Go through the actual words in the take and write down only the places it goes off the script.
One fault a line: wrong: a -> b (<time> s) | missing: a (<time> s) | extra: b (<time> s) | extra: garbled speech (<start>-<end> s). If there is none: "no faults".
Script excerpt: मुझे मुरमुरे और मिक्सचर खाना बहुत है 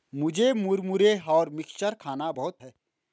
no faults